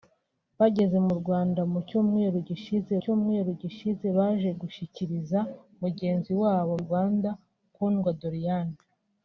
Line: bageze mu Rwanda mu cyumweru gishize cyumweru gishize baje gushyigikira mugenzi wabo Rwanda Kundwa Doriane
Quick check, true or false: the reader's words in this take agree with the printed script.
true